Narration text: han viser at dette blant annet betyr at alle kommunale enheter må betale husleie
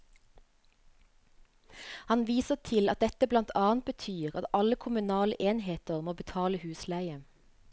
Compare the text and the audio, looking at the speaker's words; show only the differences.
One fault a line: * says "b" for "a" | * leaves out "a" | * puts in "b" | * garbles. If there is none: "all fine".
* puts in "til"